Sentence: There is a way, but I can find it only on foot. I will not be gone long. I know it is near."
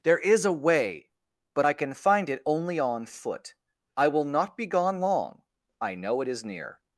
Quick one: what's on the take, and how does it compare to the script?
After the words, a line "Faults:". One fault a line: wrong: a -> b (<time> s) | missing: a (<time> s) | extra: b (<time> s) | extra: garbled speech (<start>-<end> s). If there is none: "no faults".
There is a way, but I can find it only on foot. I will not be gone long. I know it is near."
Faults:
no faults